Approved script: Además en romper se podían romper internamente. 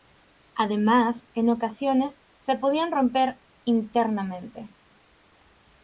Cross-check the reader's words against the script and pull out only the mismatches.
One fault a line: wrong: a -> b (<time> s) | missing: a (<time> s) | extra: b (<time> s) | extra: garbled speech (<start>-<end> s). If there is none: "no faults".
wrong: romper -> ocasiones (1.5 s)